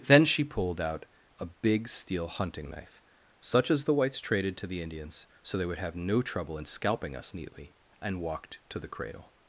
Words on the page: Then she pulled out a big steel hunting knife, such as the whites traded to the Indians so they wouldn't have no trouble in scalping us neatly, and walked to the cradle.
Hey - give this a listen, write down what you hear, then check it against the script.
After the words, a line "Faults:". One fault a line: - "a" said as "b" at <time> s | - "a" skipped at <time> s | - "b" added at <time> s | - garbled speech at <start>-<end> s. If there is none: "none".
Then she pulled out a big steel hunting knife, such as the whites traded to the Indians so they would have no trouble in scalping us neatly, and walked to the cradle.
Faults:
- "wouldn't" said as "would" at 5.7 s